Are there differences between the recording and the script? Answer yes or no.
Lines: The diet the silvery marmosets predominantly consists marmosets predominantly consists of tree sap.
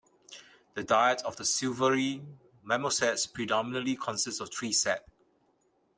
yes